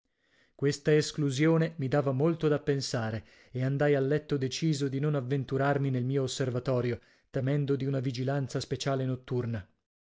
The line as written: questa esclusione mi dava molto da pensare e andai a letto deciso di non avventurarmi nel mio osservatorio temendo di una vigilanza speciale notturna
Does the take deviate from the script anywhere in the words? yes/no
no